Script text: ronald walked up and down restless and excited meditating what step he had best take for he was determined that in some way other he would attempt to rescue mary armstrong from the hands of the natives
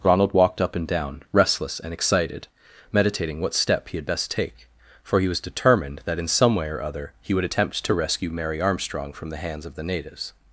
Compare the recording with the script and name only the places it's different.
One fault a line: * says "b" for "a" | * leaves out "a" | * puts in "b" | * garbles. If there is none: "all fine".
* puts in "or"